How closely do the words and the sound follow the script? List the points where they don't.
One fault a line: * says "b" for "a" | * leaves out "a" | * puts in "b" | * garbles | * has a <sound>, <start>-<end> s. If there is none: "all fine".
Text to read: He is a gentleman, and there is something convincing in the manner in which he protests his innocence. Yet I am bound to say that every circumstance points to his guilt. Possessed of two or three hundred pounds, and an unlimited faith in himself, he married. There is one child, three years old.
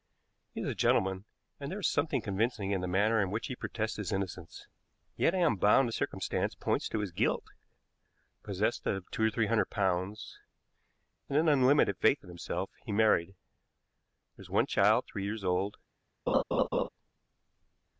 * leaves out "say that every"
* has a laugh, 16.3-16.9 s